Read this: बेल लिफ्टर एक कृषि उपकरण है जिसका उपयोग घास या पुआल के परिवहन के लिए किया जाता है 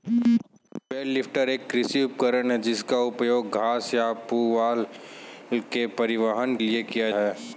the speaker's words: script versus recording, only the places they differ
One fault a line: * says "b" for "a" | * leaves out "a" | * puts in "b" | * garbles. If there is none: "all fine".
* leaves out "के"
* leaves out "जाता"